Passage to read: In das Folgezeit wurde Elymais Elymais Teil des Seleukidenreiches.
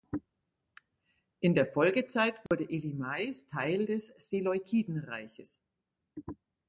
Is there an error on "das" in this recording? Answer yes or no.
yes